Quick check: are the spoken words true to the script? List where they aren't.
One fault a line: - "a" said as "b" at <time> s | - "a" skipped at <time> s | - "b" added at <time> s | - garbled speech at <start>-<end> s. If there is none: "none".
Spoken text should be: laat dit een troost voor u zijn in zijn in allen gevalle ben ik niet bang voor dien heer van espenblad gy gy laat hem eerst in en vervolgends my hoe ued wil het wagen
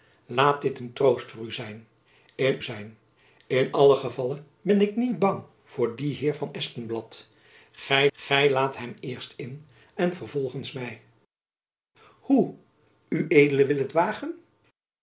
none